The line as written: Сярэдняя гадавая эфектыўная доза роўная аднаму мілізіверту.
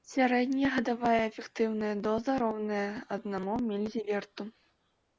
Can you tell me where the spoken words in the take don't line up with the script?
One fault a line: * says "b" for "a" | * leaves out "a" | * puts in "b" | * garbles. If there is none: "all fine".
all fine